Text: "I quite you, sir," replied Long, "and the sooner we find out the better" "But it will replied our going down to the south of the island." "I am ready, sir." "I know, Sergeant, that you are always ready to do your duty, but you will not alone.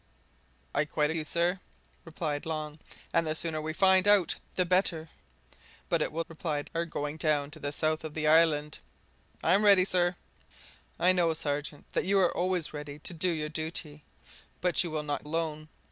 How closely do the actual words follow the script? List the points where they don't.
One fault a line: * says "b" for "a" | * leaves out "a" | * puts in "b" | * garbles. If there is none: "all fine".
all fine